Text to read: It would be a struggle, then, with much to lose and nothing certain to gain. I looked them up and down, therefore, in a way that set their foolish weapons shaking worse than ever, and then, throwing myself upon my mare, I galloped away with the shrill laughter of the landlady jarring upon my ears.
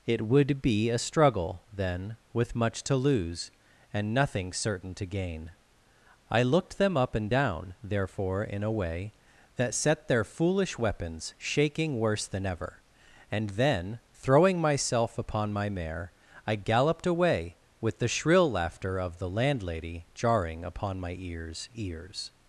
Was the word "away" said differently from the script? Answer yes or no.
no